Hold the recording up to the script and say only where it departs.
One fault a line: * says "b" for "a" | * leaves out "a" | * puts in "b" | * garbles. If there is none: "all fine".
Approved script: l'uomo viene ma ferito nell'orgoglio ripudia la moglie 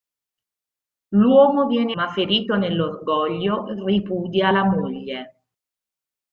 all fine